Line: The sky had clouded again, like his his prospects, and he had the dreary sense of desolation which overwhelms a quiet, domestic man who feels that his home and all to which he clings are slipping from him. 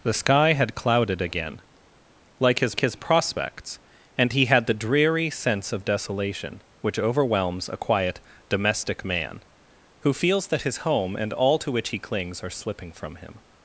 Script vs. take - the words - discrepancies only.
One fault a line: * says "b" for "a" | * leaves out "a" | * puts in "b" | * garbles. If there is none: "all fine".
all fine